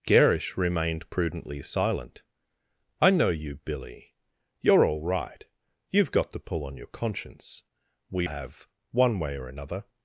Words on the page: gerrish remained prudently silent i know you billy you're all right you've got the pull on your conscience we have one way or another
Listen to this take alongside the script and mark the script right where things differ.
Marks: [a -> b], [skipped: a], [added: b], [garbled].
gerrish remained prudently silent i know you billy you're all right you've got the pull on your conscience we have one way or another